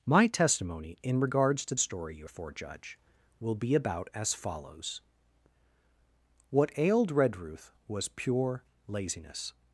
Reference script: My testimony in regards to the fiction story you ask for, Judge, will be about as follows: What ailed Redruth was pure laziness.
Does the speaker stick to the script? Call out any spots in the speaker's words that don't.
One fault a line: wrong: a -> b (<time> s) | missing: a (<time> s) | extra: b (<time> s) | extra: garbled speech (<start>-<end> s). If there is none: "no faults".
missing: the fiction (1.8 s)
missing: ask (2.3 s)